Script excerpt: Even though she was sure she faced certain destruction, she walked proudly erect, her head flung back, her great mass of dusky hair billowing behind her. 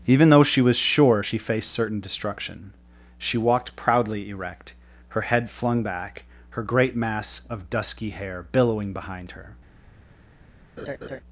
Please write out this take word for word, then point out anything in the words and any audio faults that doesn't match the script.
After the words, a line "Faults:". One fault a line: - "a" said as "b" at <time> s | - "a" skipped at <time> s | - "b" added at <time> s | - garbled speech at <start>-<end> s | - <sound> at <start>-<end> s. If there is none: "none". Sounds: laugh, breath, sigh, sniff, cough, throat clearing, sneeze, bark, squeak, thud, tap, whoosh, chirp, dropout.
Even though she was sure she faced certain destruction, she walked proudly erect, her head flung back, her great mass of dusky hair billowing behind her.
Faults:
- laugh at 10.8-11.2 s